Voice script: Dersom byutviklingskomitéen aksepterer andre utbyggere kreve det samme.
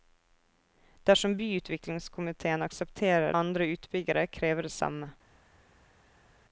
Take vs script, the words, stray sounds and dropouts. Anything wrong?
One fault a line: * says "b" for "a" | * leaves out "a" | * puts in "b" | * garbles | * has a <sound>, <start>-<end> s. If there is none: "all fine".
all fine